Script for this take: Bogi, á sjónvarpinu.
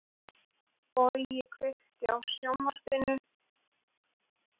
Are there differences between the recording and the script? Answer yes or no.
yes